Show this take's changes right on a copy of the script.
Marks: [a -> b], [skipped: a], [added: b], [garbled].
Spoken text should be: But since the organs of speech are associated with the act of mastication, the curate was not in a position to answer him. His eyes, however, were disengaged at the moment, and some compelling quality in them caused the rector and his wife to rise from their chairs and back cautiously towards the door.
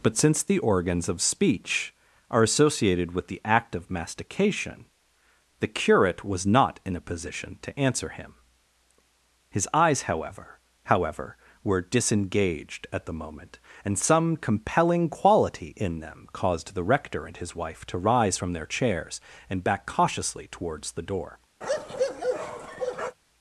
But since the organs of speech are associated with the act of mastication, the curate was not in a position to answer him. His eyes, however, [added: however] were disengaged at the moment, and some compelling quality in them caused the rector and his wife to rise from their chairs and back cautiously towards the door.